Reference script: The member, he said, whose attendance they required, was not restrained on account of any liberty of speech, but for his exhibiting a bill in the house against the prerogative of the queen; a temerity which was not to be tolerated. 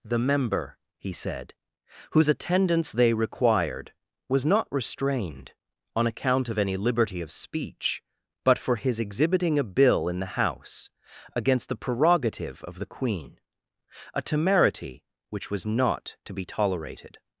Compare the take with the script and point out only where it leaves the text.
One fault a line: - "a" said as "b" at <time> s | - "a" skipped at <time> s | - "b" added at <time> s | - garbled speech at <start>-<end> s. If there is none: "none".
none